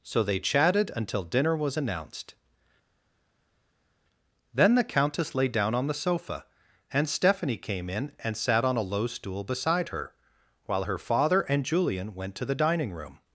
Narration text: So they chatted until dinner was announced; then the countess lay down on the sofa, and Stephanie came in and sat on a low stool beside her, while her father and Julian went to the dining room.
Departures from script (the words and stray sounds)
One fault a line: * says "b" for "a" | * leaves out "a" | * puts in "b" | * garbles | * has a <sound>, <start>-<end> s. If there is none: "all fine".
all fine